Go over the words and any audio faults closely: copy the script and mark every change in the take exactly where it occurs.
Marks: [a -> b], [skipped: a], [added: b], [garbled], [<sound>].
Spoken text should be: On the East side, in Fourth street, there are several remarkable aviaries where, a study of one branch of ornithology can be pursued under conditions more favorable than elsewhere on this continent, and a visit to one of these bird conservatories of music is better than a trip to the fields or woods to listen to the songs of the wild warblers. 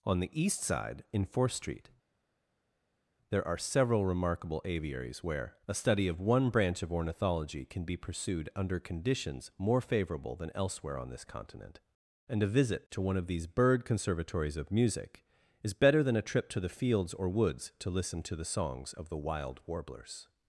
On the East side, in Fourth street, there are several remarkable aviaries where, a study of one branch of ornithology can be pursued under conditions more favorable than elsewhere on this continent, and a visit to one of these bird conservatories of music is better than a trip to the fields or woods to listen to the songs of the wild warblers.